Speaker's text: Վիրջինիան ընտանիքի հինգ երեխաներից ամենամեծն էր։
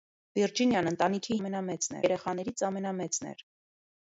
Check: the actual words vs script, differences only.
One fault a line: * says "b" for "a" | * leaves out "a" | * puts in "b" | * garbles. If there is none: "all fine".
* says "ամենամեծն" for "հինգ"